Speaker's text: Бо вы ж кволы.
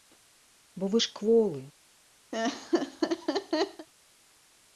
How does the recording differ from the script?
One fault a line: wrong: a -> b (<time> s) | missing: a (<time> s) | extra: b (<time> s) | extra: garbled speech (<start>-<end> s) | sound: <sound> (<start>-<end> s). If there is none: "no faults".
sound: laugh (2.3-3.9 s)